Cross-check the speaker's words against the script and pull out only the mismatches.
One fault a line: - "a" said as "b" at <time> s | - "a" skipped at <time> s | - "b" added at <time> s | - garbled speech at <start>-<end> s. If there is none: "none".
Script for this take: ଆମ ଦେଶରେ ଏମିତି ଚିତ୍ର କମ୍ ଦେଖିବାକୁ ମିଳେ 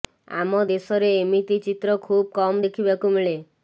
- "ଖୁବ୍" added at 2.1 s